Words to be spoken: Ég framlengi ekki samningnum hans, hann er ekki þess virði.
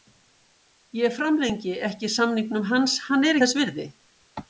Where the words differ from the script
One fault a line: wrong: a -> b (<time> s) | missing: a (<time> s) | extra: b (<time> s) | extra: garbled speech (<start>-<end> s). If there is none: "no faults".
missing: ekki (3.4 s)